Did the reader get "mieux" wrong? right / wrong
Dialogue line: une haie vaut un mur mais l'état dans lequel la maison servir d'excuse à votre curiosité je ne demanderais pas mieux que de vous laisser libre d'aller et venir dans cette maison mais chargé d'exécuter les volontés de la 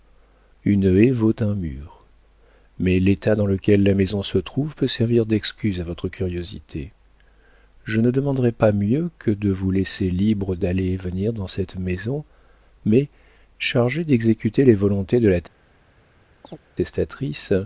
right